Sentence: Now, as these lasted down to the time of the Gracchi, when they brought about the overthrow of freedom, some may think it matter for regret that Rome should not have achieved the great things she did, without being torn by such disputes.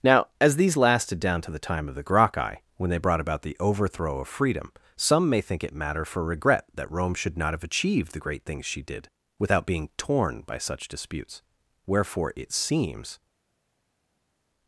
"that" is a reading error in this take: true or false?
false